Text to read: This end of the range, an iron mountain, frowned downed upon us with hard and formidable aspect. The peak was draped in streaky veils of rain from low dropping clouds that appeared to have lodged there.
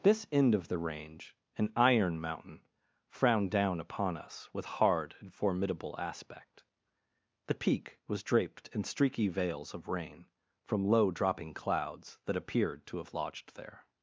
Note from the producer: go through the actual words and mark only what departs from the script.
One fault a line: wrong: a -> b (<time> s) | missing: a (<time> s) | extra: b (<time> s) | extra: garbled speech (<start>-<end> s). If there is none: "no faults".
wrong: downed -> down (3.5 s)